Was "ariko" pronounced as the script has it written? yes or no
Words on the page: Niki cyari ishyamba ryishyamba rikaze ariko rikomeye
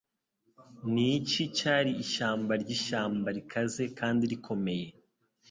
no